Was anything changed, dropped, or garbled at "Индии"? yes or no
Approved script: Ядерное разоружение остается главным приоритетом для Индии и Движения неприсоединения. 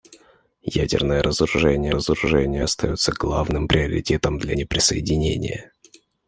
yes